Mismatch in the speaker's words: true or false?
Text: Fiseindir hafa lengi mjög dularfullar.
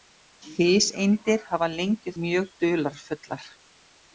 false